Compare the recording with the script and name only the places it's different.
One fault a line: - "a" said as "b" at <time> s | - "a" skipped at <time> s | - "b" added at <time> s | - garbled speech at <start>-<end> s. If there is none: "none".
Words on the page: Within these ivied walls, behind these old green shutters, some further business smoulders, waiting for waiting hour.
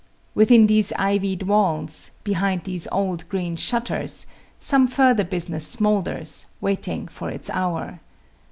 - "waiting" said as "its" at 7.3 s